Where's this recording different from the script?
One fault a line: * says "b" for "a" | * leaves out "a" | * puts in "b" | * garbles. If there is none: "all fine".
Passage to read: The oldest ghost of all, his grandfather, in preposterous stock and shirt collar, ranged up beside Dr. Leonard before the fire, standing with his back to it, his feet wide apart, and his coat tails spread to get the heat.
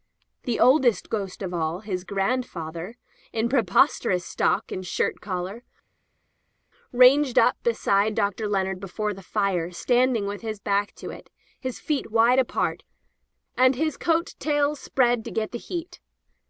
all fine